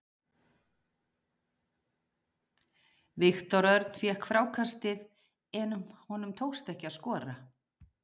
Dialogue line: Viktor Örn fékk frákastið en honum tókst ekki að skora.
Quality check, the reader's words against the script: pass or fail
pass